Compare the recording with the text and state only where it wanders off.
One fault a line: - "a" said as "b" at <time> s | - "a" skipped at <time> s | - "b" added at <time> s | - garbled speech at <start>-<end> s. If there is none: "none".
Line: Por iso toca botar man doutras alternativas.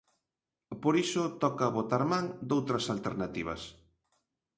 none